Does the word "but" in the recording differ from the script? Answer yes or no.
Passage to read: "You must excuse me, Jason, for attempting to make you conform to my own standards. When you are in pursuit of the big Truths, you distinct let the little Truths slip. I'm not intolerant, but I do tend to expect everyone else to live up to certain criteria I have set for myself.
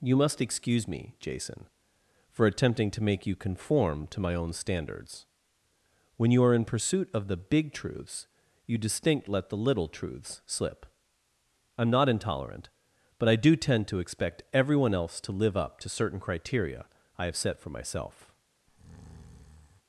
no